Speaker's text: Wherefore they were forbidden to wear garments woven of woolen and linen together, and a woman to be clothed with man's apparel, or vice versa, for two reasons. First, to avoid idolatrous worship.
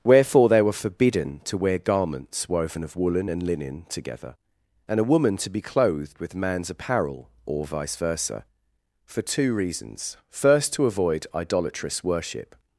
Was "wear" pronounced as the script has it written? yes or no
yes